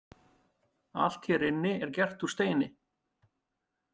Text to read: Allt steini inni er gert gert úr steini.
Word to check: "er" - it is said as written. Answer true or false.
true